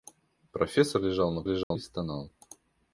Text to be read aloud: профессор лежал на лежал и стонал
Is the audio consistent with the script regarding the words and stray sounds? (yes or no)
no